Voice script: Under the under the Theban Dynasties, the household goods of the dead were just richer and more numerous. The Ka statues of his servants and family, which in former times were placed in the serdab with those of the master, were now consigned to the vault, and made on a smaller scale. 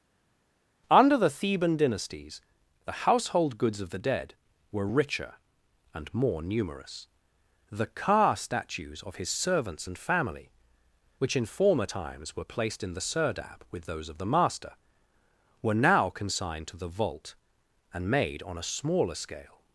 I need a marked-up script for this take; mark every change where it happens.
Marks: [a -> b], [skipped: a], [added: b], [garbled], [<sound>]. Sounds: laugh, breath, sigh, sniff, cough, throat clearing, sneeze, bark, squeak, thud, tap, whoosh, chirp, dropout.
Under the [skipped: under the] Theban Dynasties, the household goods of the dead were [skipped: just] richer and more numerous. The Ka statues of his servants and family, which in former times were placed in the serdab with those of the master, were now consigned to the vault, and made on a smaller scale.